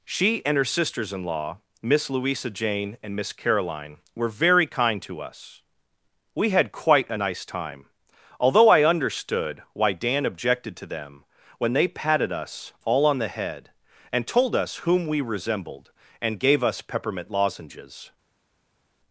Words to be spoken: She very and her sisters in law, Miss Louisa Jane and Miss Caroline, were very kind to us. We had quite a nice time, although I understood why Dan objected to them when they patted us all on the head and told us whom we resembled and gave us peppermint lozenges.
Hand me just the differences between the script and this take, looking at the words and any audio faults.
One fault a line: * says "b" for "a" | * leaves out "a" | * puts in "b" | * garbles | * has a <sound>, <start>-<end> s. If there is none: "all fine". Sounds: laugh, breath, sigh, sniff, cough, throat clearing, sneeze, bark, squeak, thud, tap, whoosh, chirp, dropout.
* leaves out "very"